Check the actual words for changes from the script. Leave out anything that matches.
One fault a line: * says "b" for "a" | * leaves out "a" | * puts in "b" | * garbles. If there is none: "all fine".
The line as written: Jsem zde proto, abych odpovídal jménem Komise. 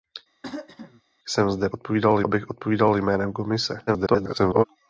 * says "odpovídal" for "proto"
* garbles